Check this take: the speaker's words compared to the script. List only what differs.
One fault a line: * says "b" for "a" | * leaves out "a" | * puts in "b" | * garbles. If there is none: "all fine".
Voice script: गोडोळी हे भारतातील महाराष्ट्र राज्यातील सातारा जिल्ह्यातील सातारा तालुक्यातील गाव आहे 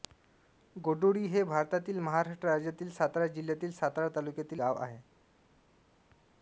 all fine